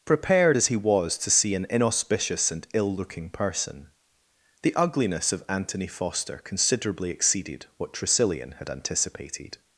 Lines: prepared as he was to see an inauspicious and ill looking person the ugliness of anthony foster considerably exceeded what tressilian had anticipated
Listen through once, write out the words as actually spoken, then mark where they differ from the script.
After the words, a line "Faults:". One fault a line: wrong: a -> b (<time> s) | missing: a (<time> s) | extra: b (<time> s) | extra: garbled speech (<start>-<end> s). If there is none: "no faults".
prepared as he was to see an inauspicious and ill looking person the ugliness of anthony foster considerably exceeded what tressilian had anticipated
Faults:
no faults